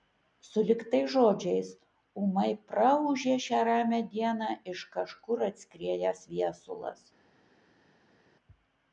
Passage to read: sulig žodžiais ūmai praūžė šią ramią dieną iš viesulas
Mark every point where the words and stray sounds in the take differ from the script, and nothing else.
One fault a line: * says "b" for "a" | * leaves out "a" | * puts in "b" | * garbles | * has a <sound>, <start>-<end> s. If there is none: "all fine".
* puts in "tais"
* puts in "kažkur atskriejęs"